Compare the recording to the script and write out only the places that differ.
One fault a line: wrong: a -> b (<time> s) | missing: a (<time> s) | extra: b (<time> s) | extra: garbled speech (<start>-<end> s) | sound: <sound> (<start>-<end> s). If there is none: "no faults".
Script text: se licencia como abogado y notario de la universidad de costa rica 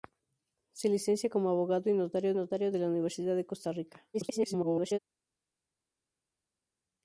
extra: notario (2.3 s)
extra: garbled speech (4.1-5.0 s)